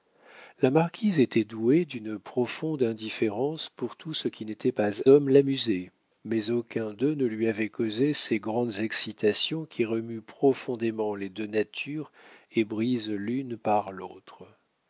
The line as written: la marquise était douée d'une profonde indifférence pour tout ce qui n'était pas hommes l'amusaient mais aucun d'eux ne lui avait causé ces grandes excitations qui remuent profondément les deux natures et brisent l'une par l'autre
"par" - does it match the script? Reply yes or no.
yes